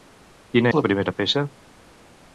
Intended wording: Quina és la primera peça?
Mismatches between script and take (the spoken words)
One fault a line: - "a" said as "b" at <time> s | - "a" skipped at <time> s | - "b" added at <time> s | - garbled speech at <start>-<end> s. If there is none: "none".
- "és" skipped at 0.7 s